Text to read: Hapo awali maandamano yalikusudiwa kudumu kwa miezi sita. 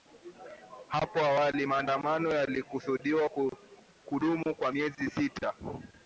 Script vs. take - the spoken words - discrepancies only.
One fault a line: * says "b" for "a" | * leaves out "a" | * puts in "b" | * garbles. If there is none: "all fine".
all fine